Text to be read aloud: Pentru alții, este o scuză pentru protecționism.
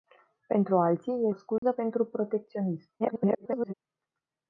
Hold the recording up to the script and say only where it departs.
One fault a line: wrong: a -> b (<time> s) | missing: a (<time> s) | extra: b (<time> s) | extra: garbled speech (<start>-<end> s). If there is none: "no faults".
missing: este (1.3 s)
extra: garbled speech (3.0-3.7 s)